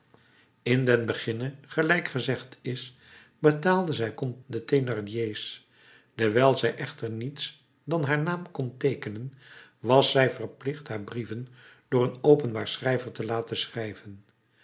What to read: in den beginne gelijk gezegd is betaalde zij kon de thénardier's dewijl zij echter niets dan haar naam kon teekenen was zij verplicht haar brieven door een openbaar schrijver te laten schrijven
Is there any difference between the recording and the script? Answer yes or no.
no